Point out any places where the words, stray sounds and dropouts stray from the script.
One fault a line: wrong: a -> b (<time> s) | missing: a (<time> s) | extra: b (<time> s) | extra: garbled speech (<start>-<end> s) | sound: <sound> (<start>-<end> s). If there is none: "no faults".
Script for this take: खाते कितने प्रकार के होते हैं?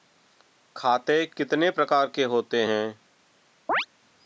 sound: chirp (3.7-3.9 s)